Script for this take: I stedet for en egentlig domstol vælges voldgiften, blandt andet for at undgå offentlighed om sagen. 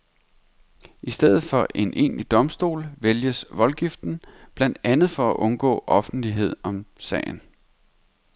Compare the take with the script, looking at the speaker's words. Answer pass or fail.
pass